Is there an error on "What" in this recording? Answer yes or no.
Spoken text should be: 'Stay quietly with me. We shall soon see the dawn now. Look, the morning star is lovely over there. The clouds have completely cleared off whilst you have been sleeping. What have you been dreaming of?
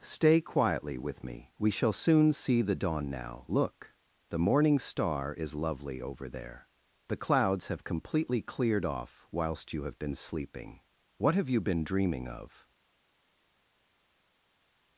no